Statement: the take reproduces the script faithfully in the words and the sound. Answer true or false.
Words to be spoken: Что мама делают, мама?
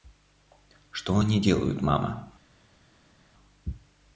false